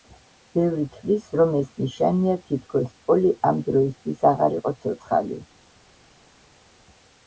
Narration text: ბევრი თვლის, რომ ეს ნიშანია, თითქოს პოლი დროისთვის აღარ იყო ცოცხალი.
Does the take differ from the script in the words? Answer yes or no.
yes